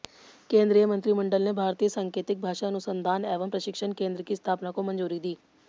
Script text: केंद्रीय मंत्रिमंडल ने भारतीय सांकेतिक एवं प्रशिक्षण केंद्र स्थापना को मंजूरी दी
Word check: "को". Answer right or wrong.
right